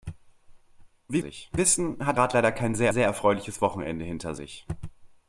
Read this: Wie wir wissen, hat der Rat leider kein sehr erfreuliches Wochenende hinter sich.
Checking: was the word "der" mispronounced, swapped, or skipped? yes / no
yes